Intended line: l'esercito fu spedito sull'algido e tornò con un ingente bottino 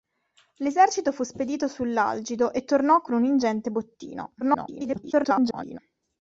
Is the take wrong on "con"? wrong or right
right